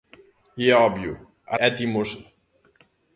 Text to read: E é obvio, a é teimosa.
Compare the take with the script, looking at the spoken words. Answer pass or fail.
pass